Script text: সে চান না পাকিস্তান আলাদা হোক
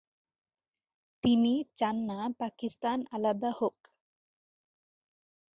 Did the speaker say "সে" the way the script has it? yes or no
no